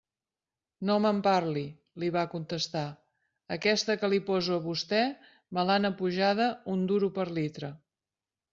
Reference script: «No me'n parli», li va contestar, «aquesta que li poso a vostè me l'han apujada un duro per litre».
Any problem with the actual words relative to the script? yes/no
no